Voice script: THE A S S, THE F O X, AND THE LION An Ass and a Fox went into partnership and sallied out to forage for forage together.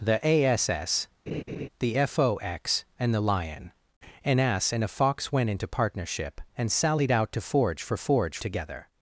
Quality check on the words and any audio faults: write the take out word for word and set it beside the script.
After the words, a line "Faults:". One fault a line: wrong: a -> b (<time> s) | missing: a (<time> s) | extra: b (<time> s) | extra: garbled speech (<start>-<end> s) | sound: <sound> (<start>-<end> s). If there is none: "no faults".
THE A S S, THE F O X, AND THE LION An Ass and a Fox went into partnership and sallied out to forage for forage together.
Faults:
sound: laugh (1.3-1.7 s)